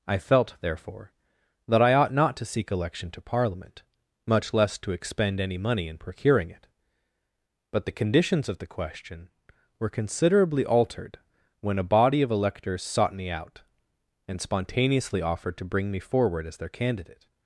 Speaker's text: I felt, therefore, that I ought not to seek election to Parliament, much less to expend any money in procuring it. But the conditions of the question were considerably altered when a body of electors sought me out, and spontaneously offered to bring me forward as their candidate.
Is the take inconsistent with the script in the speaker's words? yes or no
no